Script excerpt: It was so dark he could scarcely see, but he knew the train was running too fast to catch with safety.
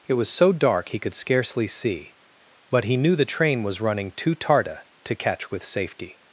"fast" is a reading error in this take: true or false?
true